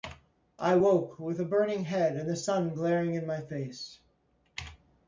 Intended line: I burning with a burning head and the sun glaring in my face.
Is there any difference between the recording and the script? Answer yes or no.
yes